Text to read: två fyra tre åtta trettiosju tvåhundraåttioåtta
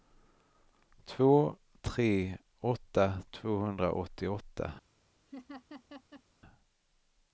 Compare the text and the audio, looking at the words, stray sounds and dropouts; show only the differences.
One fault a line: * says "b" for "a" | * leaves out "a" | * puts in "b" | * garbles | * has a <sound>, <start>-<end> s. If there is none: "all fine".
* leaves out "fyra"
* leaves out "trettiosju"
* has a laugh, 5.3-6.2 s